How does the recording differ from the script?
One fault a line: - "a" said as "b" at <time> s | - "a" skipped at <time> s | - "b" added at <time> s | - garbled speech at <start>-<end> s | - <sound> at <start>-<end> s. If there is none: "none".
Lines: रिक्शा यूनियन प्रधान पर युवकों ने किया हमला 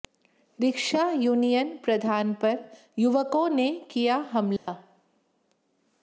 - dropout at 4.6-4.7 s